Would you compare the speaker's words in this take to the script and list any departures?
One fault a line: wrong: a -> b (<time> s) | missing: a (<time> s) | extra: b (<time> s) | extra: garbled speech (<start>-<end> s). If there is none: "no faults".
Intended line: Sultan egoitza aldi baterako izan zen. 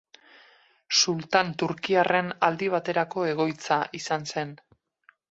wrong: egoitza -> turkiarren (1.6 s)
extra: egoitza (3.3 s)